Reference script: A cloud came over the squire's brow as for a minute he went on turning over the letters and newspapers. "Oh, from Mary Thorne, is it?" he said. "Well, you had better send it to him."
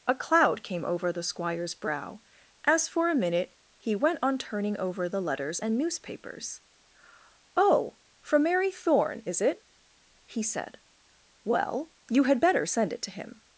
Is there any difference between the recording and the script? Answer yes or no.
no